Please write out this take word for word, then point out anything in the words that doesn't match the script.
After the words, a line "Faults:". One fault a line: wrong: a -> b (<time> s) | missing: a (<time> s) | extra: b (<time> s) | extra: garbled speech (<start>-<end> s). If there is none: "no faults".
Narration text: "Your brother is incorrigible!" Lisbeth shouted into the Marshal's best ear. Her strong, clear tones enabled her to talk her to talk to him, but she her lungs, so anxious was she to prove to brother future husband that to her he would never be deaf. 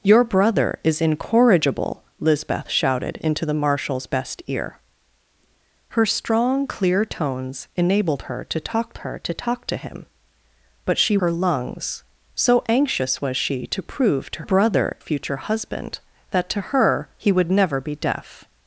"Your brother is incorrigible!" Lisbeth shouted into the Marshal's best ear. Her strong, clear tones enabled her to talk her to talk to him, but she her lungs, so anxious was she to prove to brother future husband that to her he would never be deaf.
Faults:
no faults